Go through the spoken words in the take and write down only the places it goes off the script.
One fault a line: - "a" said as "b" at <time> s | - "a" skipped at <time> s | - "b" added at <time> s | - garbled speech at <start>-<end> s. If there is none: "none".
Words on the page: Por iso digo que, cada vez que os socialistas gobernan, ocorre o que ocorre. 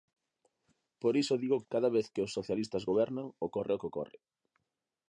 - "que" skipped at 1.6 s